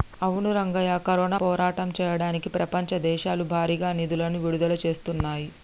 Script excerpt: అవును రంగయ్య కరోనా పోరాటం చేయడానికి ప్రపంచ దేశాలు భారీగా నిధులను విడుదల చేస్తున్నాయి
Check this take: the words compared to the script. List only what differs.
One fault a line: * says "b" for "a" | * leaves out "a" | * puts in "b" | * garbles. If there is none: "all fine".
all fine